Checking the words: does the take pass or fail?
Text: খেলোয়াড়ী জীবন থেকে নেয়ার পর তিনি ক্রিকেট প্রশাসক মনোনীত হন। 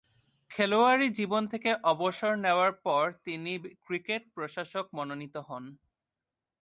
fail